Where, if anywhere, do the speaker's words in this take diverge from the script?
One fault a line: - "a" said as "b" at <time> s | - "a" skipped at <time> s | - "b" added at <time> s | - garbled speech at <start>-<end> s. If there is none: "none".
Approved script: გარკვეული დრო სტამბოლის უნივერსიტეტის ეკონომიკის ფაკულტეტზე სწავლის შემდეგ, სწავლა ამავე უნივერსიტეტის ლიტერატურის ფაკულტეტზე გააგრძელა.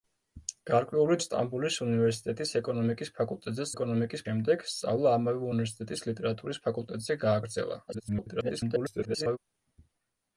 - "დრო" skipped at 1.2 s
- "სწავლის" said as "ეკონომიკის" at 3.7 s
- garbled speech at 7.9-9.4 s